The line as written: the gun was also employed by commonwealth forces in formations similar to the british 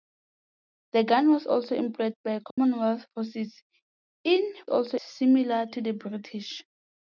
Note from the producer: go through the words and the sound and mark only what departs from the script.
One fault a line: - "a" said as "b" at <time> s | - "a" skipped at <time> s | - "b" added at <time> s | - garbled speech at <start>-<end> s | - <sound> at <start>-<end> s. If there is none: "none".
- dropout at 2.5-2.6 s
- "formations" said as "also" at 4.7 s